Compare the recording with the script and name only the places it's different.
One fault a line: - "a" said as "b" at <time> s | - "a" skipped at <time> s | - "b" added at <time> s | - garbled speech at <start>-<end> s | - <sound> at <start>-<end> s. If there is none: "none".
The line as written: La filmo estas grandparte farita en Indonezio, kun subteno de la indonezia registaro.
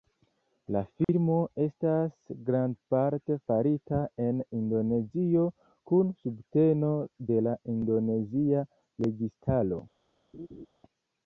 - dropout at 1.0-1.1 s
- laugh at 10.3-10.7 s